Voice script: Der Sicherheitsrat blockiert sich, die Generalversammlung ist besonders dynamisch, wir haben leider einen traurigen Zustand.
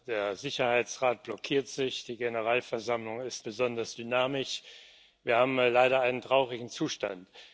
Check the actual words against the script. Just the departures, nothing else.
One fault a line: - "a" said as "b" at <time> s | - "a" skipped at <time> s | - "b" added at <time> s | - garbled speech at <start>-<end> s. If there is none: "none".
none